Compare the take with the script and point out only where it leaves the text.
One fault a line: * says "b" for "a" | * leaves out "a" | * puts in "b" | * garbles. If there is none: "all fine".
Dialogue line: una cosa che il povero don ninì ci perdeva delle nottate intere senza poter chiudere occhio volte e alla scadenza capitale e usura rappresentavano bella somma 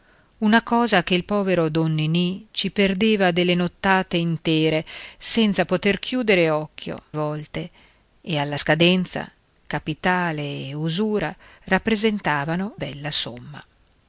all fine